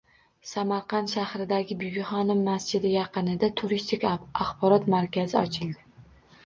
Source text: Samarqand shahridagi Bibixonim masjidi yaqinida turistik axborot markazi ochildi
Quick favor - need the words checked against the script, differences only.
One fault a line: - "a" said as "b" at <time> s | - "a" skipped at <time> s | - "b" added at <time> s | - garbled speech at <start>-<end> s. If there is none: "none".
none